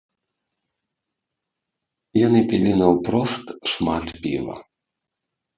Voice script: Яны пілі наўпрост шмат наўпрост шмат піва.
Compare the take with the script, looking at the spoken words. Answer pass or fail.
fail